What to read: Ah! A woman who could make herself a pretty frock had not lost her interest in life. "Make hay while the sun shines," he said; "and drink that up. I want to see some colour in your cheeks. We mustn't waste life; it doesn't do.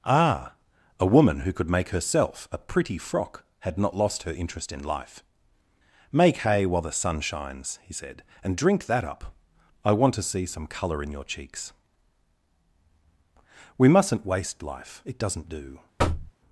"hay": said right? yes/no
yes